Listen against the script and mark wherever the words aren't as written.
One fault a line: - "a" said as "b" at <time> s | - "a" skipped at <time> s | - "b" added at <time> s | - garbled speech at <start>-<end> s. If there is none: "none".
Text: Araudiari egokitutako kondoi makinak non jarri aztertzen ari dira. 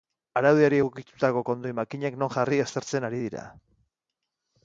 none